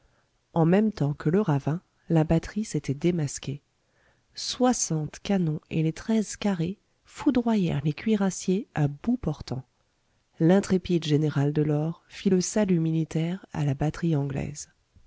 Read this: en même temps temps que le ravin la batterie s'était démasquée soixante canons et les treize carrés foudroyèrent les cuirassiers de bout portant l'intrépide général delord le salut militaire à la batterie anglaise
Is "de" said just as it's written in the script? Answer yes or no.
no